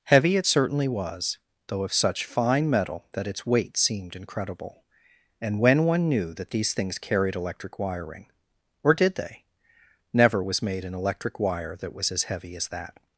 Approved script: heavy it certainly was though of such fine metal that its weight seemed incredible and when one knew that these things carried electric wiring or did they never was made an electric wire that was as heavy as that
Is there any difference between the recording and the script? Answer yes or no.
no